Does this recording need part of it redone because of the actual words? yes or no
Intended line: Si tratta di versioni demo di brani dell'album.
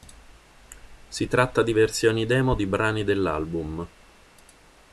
no